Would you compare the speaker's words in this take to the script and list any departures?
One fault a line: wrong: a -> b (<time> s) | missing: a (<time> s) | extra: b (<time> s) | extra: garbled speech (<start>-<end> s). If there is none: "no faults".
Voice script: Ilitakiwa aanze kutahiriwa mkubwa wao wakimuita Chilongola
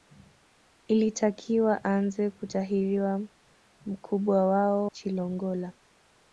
missing: wakimuita (4.9 s)